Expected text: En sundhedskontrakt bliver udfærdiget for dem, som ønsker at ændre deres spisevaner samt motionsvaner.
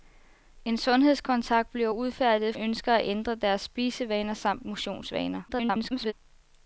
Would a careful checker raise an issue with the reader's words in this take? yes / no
yes